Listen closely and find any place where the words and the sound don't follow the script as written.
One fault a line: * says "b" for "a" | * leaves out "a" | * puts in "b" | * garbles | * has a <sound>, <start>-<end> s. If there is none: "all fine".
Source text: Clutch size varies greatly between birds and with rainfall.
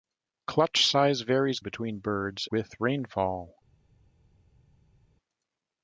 * leaves out "greatly"
* leaves out "and"